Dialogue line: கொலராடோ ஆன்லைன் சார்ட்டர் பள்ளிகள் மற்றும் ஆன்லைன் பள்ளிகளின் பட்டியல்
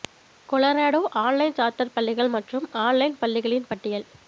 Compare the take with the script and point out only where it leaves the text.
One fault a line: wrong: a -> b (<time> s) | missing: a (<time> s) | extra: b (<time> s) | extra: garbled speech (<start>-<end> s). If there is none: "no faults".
no faults